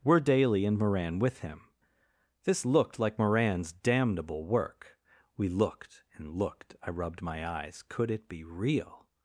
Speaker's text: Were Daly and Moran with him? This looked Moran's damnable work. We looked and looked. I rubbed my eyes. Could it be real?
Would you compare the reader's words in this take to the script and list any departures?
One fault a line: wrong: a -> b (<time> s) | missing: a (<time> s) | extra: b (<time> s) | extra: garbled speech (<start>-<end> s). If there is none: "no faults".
extra: like (3.0 s)